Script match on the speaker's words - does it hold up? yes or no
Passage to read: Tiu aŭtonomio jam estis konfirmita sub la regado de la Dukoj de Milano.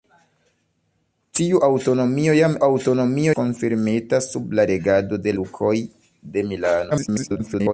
no